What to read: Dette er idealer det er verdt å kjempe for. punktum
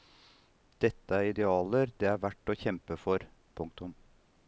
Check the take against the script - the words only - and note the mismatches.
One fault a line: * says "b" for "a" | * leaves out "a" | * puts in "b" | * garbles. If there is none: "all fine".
all fine